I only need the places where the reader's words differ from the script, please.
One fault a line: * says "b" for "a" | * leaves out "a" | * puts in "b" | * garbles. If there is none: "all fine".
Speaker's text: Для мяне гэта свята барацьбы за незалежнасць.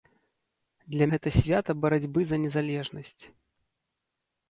* leaves out "мяне"